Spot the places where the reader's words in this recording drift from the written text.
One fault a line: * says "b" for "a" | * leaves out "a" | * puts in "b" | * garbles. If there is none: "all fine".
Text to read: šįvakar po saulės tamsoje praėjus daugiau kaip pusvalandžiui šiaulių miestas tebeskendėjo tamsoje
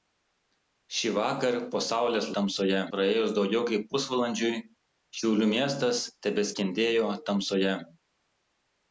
all fine